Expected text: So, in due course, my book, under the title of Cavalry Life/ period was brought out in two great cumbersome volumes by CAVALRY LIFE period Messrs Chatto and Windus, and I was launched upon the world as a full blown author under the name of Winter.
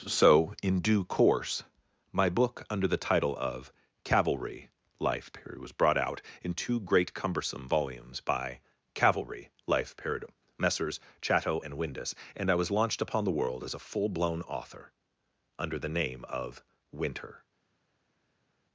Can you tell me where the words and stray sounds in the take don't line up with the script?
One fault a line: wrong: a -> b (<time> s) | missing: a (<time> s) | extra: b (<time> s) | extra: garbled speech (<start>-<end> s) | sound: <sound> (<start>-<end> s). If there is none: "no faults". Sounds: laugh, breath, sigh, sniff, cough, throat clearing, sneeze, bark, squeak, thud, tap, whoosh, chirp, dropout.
no faults